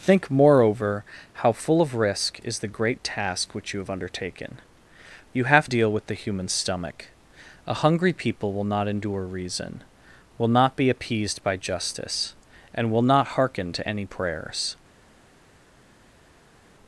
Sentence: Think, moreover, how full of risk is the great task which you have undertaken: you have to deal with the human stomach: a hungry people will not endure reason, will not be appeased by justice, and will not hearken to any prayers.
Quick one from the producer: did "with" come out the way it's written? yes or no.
yes